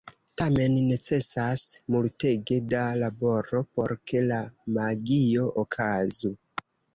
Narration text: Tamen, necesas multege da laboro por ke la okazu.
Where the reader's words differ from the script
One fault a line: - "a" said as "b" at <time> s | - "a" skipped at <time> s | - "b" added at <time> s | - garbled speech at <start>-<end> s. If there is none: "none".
- "magio" added at 4.8 s